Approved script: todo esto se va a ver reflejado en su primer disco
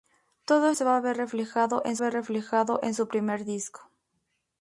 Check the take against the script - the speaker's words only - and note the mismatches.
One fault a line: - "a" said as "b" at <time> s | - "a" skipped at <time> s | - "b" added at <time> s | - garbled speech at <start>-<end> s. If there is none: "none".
- "esto" skipped at 0.7 s
- "ver reflejado en" added at 2.0 s